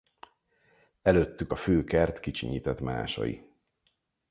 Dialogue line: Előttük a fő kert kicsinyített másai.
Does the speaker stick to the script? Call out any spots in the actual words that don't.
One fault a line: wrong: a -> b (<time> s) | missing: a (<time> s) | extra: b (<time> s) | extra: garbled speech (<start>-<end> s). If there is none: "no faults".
no faults